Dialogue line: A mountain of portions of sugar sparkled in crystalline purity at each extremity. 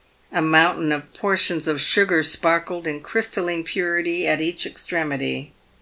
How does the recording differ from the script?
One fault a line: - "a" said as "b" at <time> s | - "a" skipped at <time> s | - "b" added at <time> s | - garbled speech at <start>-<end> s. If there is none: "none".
none